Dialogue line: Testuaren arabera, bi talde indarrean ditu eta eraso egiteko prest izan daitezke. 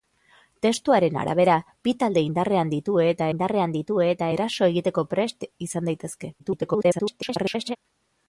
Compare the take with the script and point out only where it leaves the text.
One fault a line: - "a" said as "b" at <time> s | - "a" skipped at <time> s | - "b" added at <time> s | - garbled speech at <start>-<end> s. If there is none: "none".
- "indarrean ditu eta" added at 3.3 s
- garbled speech at 6.4-7.8 s